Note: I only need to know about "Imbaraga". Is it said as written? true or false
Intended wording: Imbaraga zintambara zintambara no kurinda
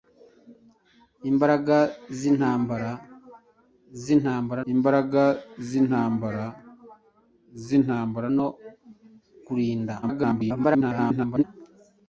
true